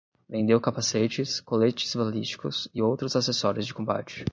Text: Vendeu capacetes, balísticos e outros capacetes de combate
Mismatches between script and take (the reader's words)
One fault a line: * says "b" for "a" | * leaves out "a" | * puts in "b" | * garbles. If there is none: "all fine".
* puts in "coletes"
* says "acessórios" for "capacetes"